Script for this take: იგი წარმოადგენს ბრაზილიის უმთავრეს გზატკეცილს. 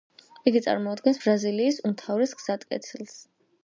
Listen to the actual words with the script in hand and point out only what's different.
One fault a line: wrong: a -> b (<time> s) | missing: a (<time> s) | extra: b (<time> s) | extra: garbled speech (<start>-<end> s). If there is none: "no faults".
no faults